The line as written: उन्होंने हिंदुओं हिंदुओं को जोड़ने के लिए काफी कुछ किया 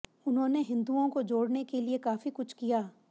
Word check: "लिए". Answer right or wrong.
right